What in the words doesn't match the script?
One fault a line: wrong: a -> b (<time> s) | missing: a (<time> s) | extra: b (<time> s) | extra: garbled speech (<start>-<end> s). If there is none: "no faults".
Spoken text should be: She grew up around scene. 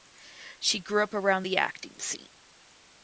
extra: the acting (1.4 s)